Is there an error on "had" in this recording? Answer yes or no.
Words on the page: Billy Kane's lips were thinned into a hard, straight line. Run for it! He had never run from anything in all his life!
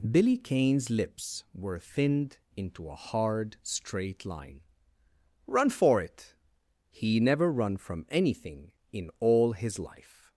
yes